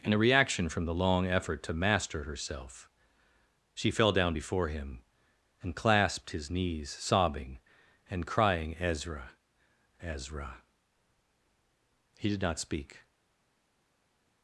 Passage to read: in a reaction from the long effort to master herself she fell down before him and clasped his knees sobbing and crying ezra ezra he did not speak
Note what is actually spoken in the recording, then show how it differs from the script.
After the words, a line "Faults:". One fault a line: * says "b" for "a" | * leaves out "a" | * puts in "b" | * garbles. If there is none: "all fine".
in a reaction from the long effort to master herself she fell down before him and clasped his knees sobbing and crying ezra ezra he did not speak
Faults:
all fine